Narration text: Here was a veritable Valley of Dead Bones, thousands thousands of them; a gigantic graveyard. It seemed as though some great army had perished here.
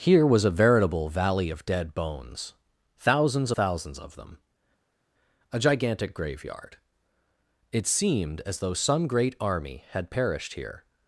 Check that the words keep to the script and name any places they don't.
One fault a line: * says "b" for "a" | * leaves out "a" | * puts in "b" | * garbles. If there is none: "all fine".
all fine